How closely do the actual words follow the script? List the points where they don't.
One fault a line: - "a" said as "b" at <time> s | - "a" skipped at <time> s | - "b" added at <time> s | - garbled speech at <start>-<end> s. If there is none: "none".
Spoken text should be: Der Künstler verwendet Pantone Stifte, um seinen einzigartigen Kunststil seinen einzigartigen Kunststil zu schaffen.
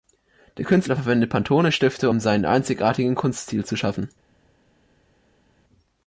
- "seinen einzigartigen Kunststil" skipped at 3.6 s